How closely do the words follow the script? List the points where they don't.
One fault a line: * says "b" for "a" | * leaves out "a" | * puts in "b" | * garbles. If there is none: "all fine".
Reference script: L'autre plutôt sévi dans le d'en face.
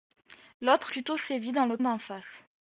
all fine